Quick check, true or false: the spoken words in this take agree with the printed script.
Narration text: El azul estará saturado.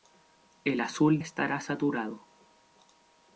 true